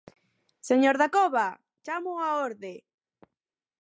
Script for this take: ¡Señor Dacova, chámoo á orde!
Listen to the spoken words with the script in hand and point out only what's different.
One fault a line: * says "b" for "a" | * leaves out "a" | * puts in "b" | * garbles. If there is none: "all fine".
all fine